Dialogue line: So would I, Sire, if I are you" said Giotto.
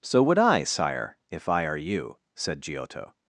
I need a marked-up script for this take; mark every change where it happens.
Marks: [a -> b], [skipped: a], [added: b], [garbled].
So would I, Sire, if I are you" said Giotto.